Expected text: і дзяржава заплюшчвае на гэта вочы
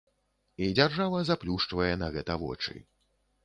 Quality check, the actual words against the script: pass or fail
pass